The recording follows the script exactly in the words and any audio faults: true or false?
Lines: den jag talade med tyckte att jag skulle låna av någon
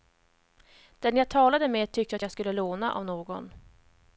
true